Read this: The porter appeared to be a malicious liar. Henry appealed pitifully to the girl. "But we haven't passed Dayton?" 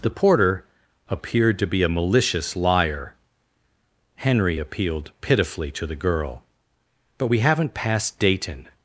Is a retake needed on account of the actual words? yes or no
no